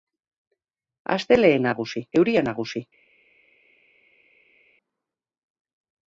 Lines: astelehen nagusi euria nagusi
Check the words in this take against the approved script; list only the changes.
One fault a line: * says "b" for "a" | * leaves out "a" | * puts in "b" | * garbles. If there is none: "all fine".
all fine